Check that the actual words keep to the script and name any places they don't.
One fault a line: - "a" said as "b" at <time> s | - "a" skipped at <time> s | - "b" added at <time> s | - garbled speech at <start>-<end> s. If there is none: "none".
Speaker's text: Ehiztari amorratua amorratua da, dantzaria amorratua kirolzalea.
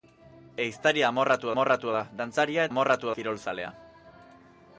none